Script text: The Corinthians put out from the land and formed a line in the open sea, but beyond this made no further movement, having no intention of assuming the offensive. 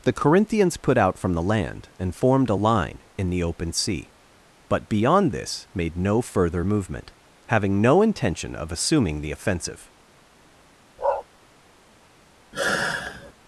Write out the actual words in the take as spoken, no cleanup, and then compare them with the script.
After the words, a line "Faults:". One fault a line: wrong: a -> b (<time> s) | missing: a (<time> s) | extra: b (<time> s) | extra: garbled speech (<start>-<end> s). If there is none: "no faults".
The Corinthians put out from the land and formed a line in the open sea, but beyond this made no further movement, having no intention of assuming the offensive.
Faults:
no faults